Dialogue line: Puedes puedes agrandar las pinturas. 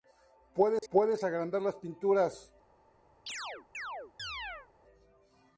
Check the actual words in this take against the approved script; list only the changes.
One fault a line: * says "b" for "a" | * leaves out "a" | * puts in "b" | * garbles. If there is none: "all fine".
all fine